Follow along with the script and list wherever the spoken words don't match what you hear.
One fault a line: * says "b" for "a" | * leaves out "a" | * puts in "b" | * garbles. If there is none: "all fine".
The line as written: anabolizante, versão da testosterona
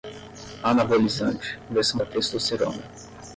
all fine